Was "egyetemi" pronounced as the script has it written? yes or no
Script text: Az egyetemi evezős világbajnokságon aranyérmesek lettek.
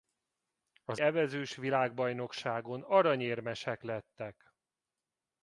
no